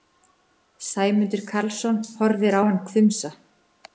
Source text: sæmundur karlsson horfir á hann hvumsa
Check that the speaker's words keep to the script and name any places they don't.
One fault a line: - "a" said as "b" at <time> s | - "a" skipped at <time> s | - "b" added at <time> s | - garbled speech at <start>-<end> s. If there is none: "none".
none